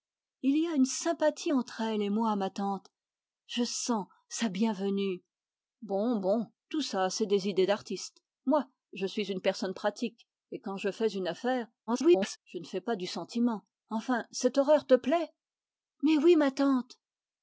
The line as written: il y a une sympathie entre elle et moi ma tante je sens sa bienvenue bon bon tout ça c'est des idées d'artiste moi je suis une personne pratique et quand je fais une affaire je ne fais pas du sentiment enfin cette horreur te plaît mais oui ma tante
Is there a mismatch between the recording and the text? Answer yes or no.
yes